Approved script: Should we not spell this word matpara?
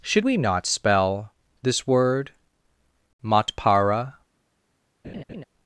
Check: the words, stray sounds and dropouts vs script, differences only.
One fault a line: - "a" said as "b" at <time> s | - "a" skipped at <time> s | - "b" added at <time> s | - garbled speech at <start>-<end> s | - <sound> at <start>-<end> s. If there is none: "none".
- laugh at 5.0-5.4 s